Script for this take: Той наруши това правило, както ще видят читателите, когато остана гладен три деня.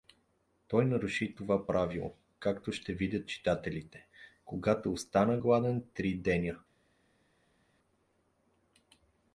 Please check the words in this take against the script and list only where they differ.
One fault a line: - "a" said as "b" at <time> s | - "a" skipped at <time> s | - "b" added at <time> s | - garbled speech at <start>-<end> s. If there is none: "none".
none